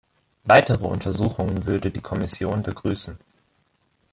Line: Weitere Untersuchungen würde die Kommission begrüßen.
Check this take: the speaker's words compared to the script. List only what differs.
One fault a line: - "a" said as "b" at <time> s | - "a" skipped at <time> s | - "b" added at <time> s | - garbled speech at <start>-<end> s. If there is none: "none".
none